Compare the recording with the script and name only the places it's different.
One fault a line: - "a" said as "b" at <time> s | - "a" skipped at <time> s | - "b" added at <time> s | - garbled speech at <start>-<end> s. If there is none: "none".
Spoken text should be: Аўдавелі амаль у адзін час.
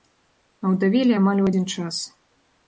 none